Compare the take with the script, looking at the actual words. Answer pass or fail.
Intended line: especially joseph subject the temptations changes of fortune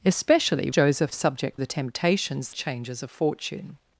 pass